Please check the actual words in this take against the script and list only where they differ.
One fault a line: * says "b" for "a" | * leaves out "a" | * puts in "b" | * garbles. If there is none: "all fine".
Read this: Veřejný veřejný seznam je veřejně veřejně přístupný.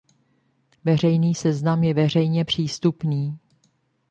* leaves out "veřejný"
* leaves out "veřejně"